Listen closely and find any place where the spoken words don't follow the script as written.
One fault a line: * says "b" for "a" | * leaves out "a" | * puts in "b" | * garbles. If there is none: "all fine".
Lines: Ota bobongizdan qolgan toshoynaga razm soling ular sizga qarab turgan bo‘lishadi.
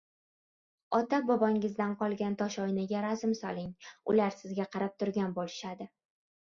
all fine